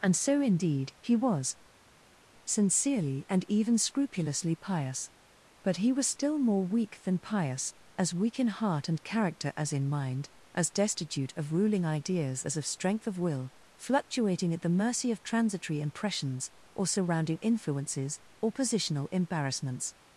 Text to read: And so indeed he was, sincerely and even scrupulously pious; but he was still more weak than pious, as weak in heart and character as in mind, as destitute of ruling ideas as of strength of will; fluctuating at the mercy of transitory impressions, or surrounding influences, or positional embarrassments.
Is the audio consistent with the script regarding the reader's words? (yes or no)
yes